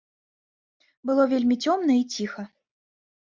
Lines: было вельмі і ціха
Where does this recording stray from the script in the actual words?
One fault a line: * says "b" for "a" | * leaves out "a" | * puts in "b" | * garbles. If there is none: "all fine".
* puts in "цёмна"